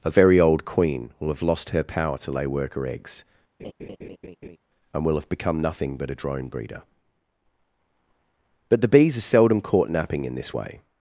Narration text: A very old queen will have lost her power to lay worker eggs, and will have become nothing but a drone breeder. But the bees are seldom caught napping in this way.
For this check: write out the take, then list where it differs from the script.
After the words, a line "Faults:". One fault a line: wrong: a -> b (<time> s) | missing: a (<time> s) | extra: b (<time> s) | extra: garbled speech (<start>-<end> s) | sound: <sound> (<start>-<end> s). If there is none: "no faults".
A very old queen will have lost her power to lay worker eggs, and will have become nothing but a drone breeder. But the bees are seldom caught napping in this way.
Faults:
sound: laugh (3.6-4.6 s)